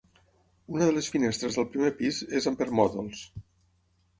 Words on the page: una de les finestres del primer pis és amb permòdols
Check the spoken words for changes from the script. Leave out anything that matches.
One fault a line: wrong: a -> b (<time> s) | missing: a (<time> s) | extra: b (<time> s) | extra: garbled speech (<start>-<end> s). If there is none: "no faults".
no faults